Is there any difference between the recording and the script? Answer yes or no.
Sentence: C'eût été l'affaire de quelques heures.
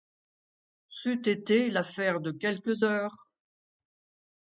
no